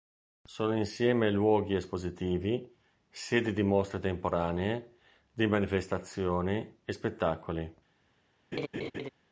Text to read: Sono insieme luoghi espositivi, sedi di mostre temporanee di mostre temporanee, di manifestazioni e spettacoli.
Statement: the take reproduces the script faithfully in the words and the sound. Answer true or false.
false